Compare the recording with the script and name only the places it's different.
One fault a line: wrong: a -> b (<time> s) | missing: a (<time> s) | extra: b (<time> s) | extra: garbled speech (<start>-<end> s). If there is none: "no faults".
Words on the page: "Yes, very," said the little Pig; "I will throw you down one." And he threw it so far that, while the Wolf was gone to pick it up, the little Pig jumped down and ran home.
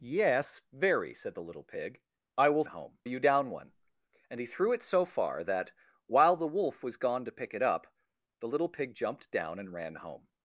wrong: throw -> home (2.6 s)